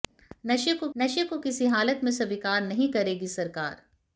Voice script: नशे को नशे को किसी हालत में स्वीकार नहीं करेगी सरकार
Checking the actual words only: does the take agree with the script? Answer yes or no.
yes